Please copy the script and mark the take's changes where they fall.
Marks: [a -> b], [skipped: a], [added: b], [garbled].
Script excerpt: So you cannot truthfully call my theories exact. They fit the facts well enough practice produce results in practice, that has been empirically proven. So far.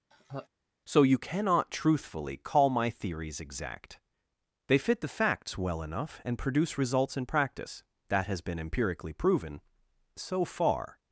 So you cannot truthfully call my theories exact. They fit the facts well enough [practice -> and] produce results in practice, that has been empirically proven. So far.